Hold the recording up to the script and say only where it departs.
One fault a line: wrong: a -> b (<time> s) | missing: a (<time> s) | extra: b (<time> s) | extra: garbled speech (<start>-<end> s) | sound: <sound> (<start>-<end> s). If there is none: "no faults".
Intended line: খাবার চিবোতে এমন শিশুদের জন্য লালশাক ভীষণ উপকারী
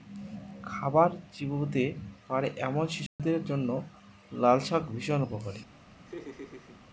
extra: পারে (2.3 s)
sound: dropout (3.1-3.2 s)
sound: laugh (6.1-6.8 s)